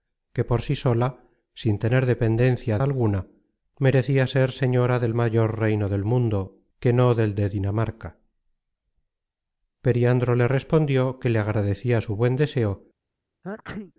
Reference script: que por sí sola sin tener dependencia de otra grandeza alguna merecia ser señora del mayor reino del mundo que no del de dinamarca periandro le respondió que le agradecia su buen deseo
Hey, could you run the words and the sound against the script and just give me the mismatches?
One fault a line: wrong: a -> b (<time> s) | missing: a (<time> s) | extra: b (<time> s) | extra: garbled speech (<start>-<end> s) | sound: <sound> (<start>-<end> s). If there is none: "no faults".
missing: de otra grandeza (2.8 s)
sound: sneeze (13.4-13.9 s)